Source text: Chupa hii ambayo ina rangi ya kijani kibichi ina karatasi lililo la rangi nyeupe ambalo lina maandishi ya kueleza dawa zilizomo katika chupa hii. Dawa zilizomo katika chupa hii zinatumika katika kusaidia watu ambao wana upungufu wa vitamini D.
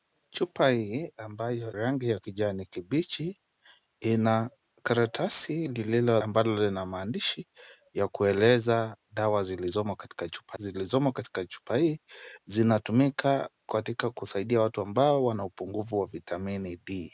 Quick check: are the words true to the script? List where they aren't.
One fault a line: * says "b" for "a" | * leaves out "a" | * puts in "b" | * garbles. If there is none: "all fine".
* leaves out "ina"
* leaves out "la rangi nyeupe"
* leaves out "hii Dawa"